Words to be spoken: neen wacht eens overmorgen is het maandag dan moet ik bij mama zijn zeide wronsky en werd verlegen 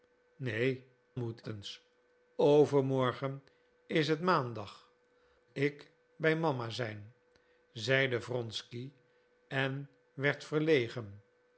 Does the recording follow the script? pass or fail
fail